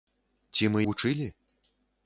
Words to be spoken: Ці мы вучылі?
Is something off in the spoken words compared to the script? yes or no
no